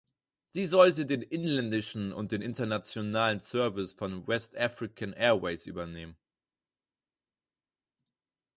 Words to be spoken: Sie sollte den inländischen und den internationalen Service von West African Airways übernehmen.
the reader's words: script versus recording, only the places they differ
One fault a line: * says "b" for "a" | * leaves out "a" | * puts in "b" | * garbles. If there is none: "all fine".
all fine